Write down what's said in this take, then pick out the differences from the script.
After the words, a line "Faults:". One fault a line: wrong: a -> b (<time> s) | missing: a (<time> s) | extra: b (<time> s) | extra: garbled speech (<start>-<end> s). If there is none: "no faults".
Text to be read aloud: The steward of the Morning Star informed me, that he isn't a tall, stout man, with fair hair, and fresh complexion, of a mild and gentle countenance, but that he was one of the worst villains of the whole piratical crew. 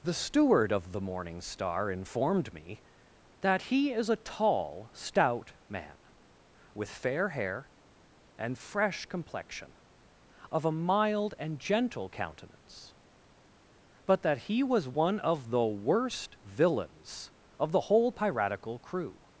The steward of the Morning Star informed me, that he is a tall, stout man, with fair hair, and fresh complexion, of a mild and gentle countenance, but that he was one of the worst villains of the whole piratical crew.
Faults:
wrong: isn't -> is (3.9 s)